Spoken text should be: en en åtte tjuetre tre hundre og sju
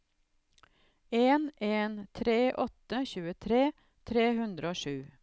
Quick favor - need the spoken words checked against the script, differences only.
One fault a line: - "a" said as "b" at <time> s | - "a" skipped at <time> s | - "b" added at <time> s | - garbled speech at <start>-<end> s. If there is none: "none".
- "tre" added at 2.1 s